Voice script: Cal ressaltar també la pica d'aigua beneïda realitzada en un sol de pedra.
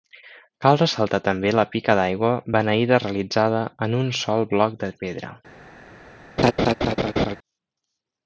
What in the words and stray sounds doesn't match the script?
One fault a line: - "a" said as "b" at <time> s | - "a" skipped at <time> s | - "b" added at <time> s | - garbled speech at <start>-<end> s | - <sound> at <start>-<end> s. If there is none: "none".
- "bloc" added at 4.6 s
- laugh at 6.4-7.4 s